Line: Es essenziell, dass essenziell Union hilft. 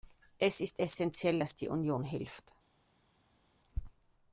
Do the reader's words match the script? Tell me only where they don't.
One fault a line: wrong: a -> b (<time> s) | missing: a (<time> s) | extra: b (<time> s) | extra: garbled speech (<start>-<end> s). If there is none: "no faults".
extra: ist (0.6 s)
wrong: essenziell -> die (1.6 s)